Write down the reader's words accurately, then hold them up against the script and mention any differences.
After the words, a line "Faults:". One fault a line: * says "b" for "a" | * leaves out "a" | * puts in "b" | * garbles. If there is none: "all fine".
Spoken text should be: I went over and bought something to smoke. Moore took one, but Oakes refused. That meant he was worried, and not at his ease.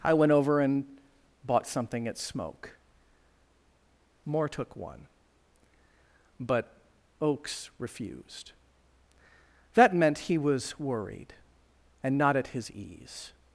I went over and bought something at smoke. Moore took one, but Oakes refused. That meant he was worried, and not at his ease.
Faults:
* says "at" for "to"